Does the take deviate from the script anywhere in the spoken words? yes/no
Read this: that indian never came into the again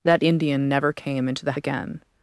no